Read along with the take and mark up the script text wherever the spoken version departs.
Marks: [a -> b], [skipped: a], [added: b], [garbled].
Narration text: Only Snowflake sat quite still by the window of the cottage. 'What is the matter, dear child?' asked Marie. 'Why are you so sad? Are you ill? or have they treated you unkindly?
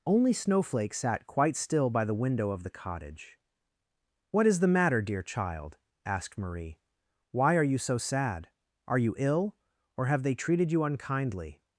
Only Snowflake sat quite still by the window of the cottage. 'What is the matter, dear child?' asked Marie. 'Why are you so sad? Are you ill? or have they treated you unkindly?